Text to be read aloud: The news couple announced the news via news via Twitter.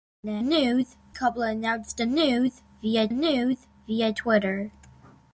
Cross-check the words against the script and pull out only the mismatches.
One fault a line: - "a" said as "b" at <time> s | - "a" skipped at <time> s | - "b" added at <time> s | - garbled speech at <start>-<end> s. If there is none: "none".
none